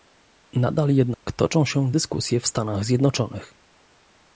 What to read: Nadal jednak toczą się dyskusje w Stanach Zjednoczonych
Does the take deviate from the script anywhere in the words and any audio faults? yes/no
yes